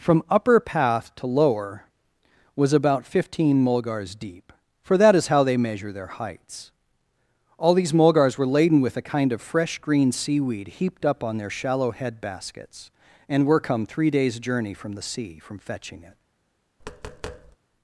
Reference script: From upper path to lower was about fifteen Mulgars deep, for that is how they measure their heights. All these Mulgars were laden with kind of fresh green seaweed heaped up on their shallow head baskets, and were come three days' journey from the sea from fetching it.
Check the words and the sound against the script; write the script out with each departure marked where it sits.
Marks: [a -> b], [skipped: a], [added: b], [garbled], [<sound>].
From upper path to lower was about fifteen Mulgars deep, for that is how they measure their heights. All these Mulgars were laden with [added: a] kind of fresh green seaweed heaped up on their shallow head baskets, and were come three days' journey from the sea from fetching it. [tap]